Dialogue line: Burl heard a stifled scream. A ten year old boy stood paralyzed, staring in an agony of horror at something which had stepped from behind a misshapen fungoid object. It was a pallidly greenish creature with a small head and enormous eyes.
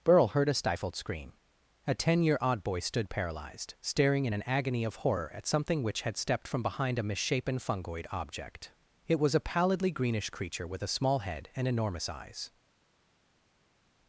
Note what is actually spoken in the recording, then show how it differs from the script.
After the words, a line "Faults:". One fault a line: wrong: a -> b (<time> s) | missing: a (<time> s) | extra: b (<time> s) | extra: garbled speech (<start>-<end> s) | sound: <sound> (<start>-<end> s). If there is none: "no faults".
Burl heard a stifled scream. A ten year odd boy stood paralyzed, staring in an agony of horror at something which had stepped from behind a misshapen fungoid object. It was a pallidly greenish creature with a small head and enormous eyes.
Faults:
wrong: old -> odd (2.4 s)